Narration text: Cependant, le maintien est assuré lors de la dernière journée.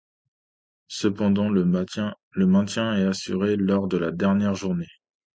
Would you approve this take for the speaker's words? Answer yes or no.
yes